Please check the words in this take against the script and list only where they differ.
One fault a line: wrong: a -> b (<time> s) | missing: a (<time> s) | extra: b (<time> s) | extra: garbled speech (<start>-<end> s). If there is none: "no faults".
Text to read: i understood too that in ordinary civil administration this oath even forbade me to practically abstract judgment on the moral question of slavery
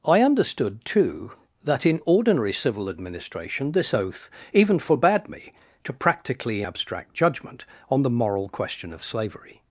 no faults